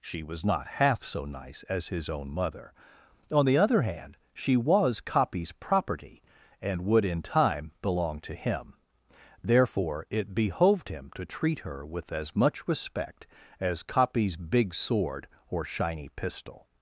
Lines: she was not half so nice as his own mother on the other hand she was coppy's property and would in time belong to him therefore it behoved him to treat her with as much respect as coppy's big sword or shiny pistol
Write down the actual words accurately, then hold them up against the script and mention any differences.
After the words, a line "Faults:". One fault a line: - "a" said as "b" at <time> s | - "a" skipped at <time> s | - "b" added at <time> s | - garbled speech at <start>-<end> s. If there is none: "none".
she was not half so nice as his own mother on the other hand she was coppy's property and would in time belong to him therefore it behoved him to treat her with as much respect as coppy's big sword or shiny pistol
Faults:
none